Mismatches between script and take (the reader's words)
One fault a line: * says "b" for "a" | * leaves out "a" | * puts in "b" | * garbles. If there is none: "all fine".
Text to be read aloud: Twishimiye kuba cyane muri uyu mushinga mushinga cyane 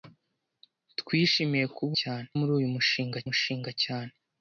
all fine